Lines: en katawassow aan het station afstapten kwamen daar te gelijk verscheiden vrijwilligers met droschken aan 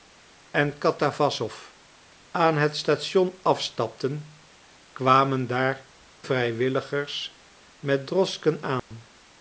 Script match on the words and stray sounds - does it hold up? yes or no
no